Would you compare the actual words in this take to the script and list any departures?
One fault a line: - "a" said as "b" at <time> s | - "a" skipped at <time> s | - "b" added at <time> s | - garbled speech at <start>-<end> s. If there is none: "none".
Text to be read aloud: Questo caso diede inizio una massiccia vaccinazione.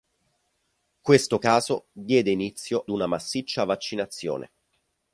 none